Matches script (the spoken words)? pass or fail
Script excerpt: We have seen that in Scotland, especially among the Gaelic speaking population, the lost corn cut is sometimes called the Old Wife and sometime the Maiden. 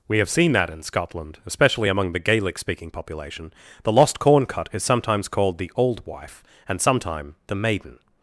pass